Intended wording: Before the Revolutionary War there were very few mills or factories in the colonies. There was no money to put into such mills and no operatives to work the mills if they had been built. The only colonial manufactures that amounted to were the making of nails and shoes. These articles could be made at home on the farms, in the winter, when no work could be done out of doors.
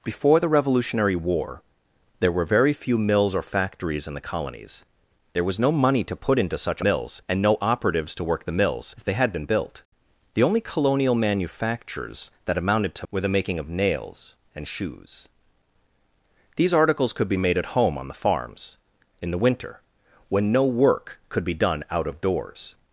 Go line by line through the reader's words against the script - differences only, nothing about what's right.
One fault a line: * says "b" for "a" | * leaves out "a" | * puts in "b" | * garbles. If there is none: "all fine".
all fine